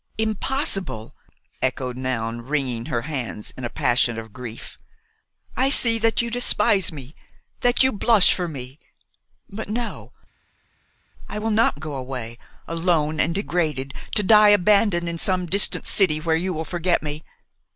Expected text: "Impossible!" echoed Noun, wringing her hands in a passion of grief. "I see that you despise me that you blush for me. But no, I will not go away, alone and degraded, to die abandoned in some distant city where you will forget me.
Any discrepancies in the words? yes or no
no